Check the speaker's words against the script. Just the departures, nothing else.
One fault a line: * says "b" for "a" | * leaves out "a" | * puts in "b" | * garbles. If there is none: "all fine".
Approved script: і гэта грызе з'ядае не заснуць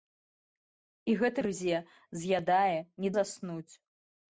all fine